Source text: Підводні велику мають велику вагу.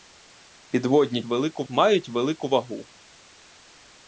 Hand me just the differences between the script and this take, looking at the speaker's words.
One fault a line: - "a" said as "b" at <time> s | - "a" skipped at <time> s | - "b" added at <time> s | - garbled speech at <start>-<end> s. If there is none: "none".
none